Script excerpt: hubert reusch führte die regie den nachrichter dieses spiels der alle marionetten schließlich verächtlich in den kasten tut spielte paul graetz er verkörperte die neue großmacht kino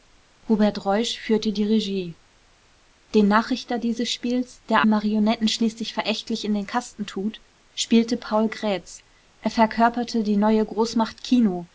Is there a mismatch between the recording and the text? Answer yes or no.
yes